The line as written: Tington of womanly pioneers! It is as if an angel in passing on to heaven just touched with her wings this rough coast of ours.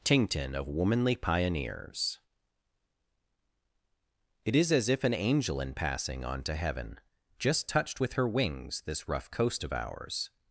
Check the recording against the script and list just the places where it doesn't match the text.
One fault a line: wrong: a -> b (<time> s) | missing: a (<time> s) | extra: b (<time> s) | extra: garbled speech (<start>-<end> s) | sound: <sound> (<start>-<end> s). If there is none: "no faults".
no faults